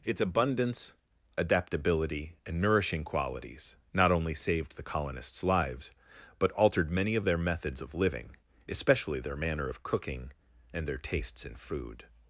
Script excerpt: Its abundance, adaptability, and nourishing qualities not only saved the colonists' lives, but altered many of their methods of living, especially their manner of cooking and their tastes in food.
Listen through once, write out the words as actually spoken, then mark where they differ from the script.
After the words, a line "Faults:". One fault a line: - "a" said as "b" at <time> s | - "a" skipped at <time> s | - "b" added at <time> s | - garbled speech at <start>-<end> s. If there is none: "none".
Its abundance, adaptability, and nourishing qualities not only saved the colonists' lives, but altered many of their methods of living, especially their manner of cooking and their tastes in food.
Faults:
none